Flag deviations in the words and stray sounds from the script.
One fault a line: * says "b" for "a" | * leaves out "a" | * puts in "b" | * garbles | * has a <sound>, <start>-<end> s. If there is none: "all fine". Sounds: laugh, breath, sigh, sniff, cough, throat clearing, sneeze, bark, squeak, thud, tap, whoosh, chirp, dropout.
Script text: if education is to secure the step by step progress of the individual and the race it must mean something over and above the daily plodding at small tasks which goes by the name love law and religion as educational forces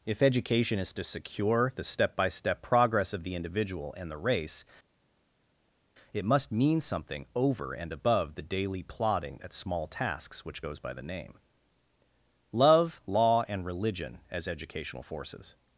all fine